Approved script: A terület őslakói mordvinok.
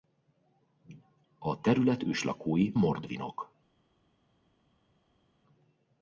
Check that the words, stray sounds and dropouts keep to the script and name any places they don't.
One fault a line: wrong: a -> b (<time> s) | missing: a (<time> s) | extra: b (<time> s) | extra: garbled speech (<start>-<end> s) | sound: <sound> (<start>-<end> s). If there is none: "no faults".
no faults